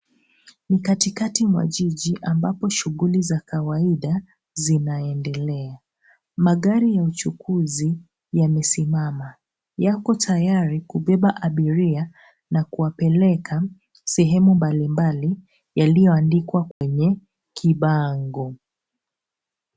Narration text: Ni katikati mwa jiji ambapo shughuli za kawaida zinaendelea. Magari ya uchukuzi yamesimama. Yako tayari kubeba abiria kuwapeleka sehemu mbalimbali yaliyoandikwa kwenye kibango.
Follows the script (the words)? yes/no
no